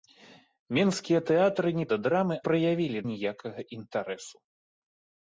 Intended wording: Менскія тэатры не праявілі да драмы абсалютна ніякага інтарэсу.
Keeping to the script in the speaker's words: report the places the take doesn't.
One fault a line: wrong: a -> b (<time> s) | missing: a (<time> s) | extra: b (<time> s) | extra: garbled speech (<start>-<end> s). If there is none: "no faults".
missing: праявілі (1.8 s)
wrong: абсалютна -> праявілі (2.4 s)